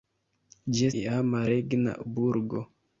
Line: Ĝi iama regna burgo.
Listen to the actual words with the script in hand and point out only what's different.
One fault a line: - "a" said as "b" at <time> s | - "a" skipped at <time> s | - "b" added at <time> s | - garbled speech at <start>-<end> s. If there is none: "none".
none